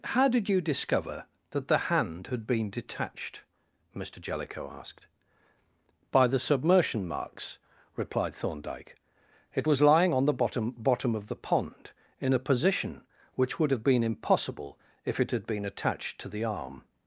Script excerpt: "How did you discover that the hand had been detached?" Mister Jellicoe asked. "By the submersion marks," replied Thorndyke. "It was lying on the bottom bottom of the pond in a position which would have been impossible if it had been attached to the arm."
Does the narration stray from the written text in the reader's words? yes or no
no